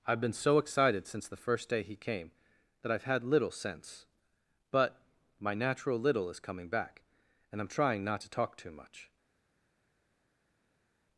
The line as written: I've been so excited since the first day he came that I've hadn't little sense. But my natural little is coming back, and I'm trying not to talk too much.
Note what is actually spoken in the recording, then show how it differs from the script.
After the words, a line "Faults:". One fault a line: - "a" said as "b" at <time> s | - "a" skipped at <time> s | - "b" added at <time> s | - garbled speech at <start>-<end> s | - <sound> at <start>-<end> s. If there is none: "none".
I've been so excited since the first day he came that I've had little sense. But my natural little is coming back, and I'm trying not to talk too much.
Faults:
- "hadn't" said as "had" at 3.0 s